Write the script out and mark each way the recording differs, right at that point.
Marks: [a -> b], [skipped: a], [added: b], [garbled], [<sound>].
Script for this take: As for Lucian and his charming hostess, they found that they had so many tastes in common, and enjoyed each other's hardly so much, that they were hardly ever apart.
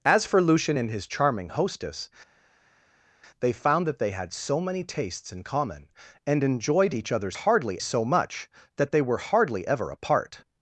As for Lucian and his charming hostess, they found that they had so many tastes in common, and enjoyed each other's hardly so much, that they were hardly ever apart.